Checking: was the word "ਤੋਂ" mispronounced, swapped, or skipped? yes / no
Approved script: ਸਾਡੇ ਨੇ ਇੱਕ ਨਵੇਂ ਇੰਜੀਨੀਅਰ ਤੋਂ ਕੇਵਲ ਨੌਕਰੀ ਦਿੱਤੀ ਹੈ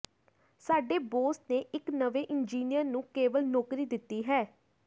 yes